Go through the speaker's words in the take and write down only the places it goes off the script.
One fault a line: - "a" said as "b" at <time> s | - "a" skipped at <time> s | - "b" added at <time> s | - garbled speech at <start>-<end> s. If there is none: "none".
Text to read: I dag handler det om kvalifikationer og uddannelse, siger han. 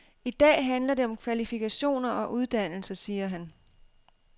none